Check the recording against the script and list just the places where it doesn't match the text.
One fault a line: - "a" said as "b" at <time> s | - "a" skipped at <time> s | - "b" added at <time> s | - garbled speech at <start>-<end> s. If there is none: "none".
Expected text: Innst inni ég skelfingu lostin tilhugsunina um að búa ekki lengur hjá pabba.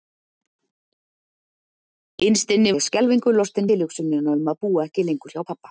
none